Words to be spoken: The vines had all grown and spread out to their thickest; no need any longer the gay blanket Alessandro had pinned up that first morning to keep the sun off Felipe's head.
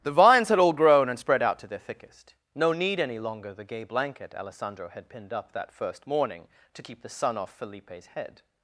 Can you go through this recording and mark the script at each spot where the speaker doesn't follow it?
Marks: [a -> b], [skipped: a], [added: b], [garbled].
The vines had all grown and spread out to their thickest; no need any longer the gay blanket Alessandro had pinned up that first morning to keep the sun off Felipe's head.